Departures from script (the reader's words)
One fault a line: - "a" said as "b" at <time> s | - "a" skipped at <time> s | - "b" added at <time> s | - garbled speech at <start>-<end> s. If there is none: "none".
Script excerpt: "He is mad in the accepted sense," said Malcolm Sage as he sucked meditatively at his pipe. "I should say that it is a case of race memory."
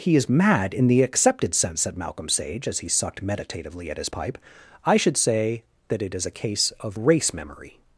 none